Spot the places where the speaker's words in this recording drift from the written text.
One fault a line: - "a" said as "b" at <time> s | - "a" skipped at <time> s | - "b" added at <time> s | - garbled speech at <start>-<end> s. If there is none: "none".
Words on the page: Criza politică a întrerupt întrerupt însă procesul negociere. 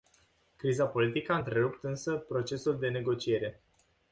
- "întrerupt" skipped at 1.8 s
- "de" added at 2.8 s